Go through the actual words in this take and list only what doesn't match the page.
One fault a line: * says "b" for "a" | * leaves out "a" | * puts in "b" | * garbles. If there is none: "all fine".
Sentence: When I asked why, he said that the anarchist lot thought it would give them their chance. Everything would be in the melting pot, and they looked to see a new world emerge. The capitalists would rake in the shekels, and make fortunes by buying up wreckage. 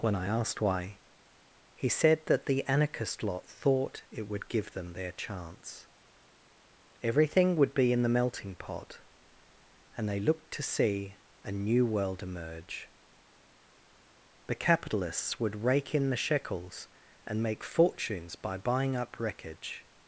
all fine